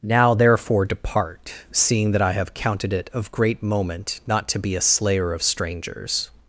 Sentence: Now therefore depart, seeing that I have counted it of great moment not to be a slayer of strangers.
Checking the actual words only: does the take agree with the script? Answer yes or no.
yes